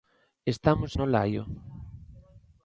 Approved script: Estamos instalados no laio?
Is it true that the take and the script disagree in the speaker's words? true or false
true